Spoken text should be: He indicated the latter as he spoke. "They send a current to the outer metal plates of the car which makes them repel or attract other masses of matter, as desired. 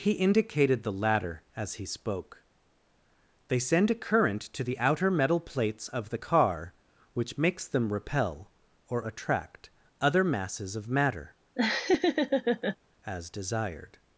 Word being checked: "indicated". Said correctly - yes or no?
yes